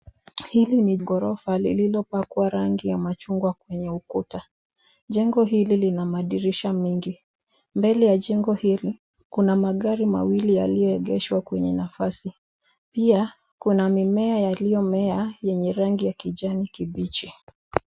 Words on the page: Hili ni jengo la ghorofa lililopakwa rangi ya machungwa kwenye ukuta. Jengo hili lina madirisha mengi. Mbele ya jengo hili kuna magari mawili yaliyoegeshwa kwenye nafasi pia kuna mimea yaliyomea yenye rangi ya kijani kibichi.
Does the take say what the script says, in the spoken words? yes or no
no